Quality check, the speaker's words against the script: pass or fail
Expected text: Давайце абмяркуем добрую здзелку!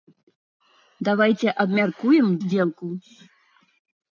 fail